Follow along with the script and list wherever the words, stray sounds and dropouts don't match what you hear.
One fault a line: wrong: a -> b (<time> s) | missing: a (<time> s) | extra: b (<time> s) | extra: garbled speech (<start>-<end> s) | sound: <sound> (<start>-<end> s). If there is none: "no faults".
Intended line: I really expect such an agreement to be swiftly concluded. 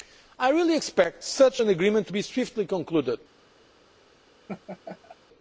sound: laugh (4.5-5.2 s)